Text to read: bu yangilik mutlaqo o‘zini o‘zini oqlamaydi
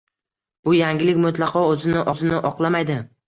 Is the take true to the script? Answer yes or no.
yes